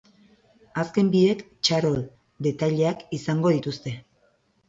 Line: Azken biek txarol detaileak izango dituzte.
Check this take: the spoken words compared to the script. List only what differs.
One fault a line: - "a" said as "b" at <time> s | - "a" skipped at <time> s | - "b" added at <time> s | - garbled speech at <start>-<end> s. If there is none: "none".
none